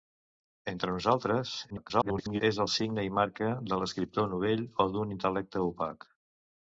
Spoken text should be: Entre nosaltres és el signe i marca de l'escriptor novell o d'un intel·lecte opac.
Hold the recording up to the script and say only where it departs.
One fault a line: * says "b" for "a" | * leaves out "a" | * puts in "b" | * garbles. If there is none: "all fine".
* garbles